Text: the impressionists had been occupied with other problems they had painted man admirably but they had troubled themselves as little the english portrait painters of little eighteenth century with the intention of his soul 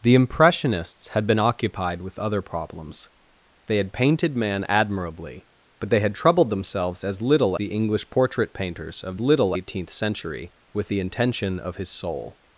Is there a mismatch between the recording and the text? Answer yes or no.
no